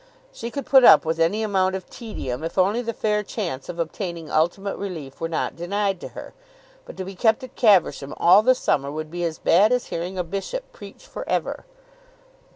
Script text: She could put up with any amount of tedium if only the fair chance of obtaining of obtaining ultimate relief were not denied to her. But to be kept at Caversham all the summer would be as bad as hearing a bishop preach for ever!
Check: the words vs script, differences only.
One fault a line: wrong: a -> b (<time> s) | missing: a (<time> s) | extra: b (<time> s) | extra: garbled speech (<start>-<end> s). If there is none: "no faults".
missing: of obtaining (4.3 s)